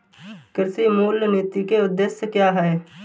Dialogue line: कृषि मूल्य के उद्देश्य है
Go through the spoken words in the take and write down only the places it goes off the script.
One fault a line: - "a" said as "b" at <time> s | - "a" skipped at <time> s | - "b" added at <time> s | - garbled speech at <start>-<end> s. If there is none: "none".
- "नीति" added at 1.3 s
- "क्या" added at 2.3 s